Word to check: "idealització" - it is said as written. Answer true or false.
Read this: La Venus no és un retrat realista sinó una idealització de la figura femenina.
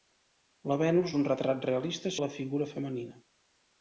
false